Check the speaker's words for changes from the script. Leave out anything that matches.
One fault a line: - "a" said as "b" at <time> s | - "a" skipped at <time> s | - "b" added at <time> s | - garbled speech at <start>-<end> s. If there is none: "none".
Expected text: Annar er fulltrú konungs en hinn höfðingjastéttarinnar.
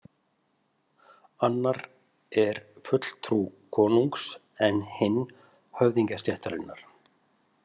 none